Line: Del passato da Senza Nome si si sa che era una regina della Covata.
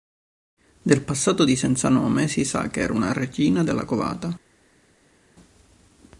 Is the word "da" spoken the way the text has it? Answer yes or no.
no